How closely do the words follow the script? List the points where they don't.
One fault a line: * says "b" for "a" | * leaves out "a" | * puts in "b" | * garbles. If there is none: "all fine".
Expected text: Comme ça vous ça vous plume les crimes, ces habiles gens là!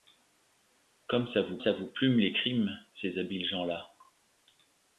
all fine